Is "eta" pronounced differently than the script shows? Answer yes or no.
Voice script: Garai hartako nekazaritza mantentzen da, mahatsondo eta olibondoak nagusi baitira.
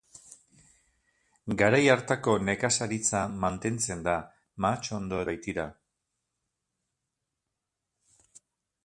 yes